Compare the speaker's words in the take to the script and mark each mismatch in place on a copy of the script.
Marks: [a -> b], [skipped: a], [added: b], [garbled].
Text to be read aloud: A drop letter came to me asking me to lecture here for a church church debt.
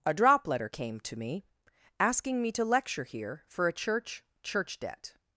A drop letter came to me asking me to lecture here for a church church debt.